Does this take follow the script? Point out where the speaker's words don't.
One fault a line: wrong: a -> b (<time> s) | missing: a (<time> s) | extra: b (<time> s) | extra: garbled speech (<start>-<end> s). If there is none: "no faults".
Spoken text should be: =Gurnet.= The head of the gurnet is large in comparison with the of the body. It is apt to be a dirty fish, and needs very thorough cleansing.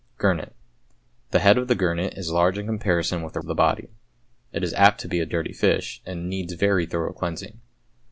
no faults